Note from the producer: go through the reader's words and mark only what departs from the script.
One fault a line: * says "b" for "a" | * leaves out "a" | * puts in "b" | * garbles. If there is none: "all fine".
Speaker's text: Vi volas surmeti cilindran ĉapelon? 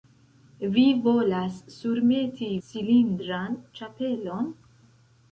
all fine